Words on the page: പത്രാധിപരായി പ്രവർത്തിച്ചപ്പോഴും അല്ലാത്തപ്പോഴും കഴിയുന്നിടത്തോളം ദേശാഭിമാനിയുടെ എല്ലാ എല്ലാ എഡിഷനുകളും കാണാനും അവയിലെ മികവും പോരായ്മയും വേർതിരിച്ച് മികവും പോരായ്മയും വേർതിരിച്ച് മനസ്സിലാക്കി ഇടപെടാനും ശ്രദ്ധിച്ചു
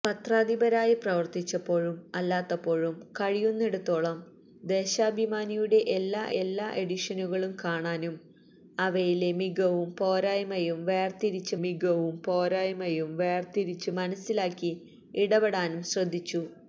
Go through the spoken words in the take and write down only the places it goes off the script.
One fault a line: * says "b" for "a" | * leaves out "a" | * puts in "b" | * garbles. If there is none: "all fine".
all fine